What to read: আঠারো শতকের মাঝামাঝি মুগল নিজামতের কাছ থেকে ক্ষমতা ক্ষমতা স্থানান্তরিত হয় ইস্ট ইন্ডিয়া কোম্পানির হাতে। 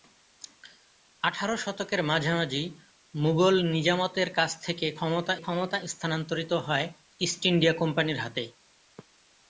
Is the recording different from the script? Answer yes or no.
no